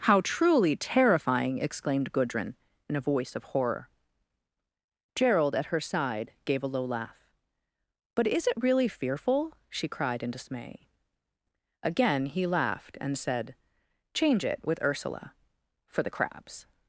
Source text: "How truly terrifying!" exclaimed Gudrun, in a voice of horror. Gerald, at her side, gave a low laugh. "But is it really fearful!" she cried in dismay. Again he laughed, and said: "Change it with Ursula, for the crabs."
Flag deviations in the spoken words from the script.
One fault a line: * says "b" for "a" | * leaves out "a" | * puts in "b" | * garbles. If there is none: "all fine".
all fine